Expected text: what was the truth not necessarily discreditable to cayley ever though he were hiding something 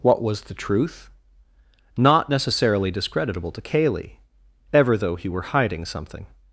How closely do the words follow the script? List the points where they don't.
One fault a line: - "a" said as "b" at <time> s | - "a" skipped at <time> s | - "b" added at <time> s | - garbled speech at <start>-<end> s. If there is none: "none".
none